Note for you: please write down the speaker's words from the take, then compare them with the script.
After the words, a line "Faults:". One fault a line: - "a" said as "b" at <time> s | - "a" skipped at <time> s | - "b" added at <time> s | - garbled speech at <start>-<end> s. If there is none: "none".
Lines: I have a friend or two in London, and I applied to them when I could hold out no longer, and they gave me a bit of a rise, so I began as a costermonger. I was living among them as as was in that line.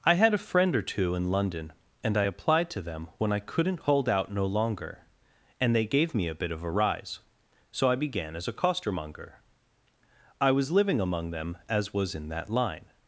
I had a friend or two in London, and I applied to them when I couldn't hold out no longer, and they gave me a bit of a rise, so I began as a costermonger. I was living among them as was in that line.
Faults:
- "have" said as "had" at 0.1 s
- "could" said as "couldn't" at 3.4 s
- "as" skipped at 11.9 s